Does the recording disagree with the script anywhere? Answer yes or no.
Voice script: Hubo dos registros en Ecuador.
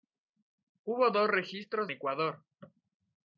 yes